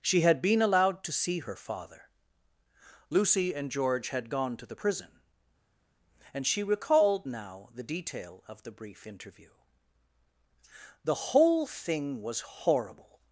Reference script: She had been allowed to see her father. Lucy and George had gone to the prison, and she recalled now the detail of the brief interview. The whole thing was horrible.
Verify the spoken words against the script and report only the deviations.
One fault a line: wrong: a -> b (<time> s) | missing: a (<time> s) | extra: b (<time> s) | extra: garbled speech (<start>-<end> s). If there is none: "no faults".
no faults